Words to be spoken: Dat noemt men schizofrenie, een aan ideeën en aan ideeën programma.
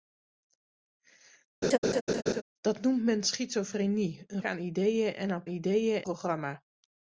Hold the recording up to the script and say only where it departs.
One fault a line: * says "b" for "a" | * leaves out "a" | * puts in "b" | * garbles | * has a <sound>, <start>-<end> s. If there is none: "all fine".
* has a laugh, 1.6-2.4 s